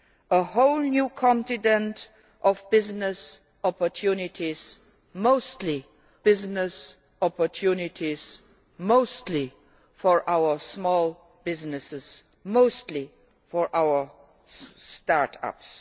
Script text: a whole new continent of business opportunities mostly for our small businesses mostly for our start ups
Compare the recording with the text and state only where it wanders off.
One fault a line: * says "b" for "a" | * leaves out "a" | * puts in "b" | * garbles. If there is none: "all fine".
* puts in "business opportunities mostly"